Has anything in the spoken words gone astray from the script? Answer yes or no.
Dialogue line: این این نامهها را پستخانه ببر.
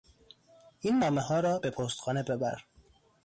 yes